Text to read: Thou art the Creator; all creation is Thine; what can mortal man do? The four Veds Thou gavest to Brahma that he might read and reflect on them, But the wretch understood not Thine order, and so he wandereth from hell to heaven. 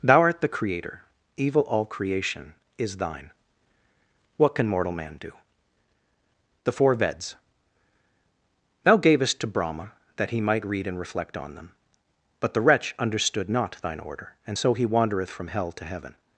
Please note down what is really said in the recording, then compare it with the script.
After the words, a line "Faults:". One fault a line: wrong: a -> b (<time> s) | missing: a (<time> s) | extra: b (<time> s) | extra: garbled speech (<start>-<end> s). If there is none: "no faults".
Thou art the Creator; evil all creation is Thine; what can mortal man do? The four Veds Thou gavest to Brahma that he might read and reflect on them, But the wretch understood not Thine order, and so he wandereth from hell to heaven.
Faults:
extra: evil (1.4 s)